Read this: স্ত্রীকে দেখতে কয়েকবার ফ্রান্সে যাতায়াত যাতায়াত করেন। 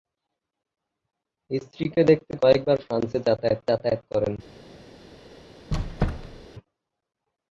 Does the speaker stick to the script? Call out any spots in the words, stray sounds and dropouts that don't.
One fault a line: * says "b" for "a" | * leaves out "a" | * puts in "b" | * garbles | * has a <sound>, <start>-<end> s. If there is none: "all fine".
* has a squeak, 5.7-6.5 s